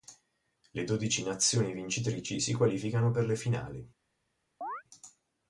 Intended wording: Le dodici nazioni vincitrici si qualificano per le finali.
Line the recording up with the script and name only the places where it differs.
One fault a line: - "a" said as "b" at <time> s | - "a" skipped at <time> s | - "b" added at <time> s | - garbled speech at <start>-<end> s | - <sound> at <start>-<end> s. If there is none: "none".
- chirp at 4.6-4.8 s